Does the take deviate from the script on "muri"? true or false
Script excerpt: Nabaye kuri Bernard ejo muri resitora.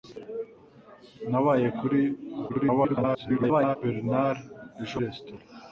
true